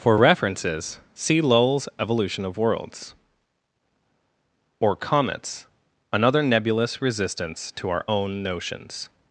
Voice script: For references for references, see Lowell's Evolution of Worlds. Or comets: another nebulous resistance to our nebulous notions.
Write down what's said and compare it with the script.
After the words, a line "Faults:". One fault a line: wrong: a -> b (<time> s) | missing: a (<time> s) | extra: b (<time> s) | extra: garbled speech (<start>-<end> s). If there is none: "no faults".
For references, see Lowell's Evolution of Worlds. Or comets: another nebulous resistance to our own notions.
Faults:
missing: for references (1.0 s)
wrong: nebulous -> own (8.0 s)